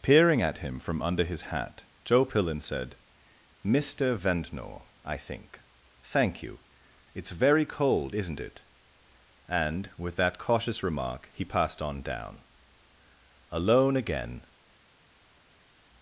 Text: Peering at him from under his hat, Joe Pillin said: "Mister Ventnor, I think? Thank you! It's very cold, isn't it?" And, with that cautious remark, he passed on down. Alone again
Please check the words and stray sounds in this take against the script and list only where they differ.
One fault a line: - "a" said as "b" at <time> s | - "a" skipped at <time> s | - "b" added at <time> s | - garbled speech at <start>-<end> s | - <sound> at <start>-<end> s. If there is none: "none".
none